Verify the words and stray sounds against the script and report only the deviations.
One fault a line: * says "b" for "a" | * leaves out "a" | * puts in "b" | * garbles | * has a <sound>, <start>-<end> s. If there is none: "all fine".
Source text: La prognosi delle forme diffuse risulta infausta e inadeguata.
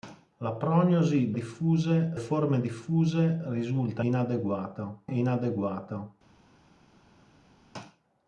* says "diffuse" for "delle"
* says "inadeguata" for "infausta"